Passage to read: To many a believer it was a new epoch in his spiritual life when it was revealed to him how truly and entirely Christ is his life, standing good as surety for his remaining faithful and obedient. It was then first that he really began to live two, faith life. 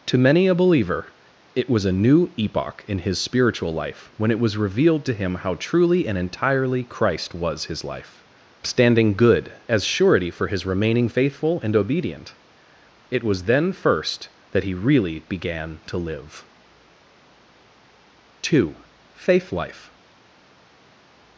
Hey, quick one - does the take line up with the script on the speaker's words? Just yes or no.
no